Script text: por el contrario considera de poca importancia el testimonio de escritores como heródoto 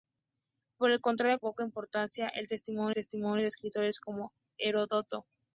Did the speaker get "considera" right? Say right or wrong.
wrong